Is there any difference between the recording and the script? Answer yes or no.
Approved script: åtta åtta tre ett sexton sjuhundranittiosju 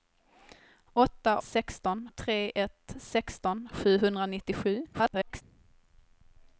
yes